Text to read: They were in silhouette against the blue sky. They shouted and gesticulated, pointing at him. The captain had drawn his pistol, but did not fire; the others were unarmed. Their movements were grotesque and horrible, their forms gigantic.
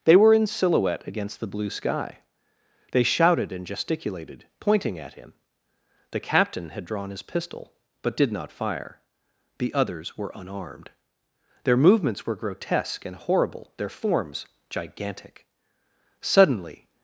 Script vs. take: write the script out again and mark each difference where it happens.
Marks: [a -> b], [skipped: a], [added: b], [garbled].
They were in silhouette against the blue sky. They shouted and gesticulated, pointing at him. The captain had drawn his pistol, but did not fire; the others were unarmed. Their movements were grotesque and horrible, their forms gigantic. [added: Suddenly]